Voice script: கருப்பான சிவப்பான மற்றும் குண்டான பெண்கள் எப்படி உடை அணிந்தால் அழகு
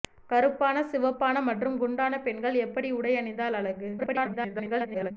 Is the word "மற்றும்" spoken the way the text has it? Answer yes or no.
yes